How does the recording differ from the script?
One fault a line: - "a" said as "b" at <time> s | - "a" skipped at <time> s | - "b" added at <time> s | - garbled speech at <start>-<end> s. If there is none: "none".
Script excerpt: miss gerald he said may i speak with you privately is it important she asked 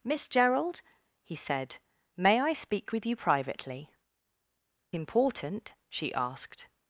- "is it" skipped at 3.9 s